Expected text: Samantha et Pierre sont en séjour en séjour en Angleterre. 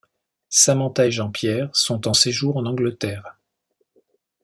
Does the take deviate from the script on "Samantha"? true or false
false